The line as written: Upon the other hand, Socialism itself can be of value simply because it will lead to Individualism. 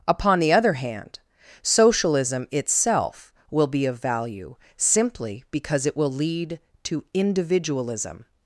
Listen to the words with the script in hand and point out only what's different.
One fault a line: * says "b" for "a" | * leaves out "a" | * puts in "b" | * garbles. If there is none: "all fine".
* says "will" for "can"